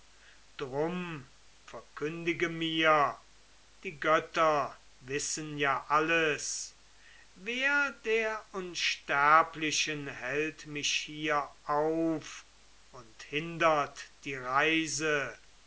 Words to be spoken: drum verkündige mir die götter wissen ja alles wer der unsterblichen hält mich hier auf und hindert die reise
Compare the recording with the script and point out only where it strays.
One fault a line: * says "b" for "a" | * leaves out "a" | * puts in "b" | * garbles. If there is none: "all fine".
all fine